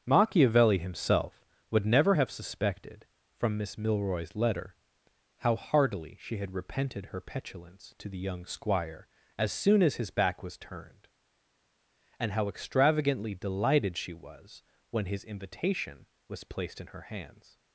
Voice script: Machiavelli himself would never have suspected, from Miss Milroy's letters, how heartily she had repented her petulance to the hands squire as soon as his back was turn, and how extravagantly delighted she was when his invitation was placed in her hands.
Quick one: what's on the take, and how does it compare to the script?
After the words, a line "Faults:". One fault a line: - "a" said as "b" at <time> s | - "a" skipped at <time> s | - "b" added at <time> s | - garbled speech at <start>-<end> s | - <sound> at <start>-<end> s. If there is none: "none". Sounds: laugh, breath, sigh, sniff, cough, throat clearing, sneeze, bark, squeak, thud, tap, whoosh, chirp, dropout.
Machiavelli himself would never have suspected, from Miss Milroy's letter, how heartily she had repented her petulance to the young squire as soon as his back was turned, and how extravagantly delighted she was when his invitation was placed in her hands.
Faults:
- "letters" said as "letter" at 4.3 s
- "hands" said as "young" at 8.2 s
- "turn" said as "turned" at 10.6 s